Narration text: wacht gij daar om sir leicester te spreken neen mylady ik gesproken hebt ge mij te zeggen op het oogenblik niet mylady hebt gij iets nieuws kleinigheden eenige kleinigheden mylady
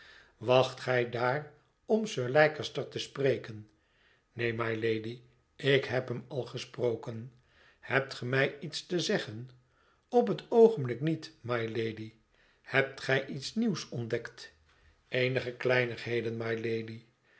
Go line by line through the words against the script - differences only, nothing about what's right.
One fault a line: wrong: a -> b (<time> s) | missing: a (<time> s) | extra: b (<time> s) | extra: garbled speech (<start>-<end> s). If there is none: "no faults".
extra: heb hem al (5.8 s)
extra: iets (8.6 s)
wrong: kleinigheden -> ontdekt (13.9 s)